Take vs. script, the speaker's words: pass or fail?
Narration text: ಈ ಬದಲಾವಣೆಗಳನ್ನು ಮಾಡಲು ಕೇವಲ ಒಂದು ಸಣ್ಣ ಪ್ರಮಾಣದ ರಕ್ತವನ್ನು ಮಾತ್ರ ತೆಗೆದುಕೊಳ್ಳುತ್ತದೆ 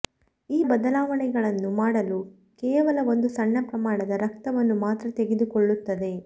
pass